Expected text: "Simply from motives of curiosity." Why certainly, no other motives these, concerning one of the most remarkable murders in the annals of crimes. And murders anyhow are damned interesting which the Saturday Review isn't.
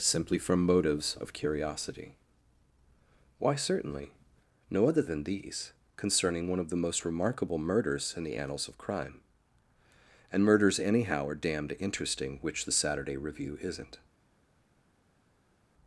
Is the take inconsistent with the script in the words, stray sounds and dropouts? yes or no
yes